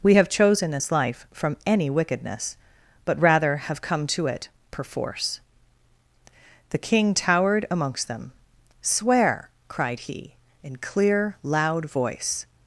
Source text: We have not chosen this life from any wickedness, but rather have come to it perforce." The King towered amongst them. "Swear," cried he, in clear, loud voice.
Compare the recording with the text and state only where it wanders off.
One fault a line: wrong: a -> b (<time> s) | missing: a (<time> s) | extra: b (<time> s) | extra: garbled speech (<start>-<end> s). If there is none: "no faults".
missing: not (0.3 s)